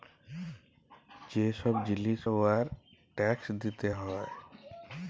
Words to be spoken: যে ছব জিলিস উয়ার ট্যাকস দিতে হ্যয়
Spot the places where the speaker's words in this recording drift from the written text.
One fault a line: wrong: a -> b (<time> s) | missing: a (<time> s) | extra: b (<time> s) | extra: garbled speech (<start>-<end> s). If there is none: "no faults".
no faults